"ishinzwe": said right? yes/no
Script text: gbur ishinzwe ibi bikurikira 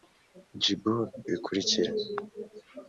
no